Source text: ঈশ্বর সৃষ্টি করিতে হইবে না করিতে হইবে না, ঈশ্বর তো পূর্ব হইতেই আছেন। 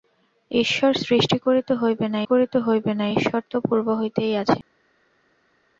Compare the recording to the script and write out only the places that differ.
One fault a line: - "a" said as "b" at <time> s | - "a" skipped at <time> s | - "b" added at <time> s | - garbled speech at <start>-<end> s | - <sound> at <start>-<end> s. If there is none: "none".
none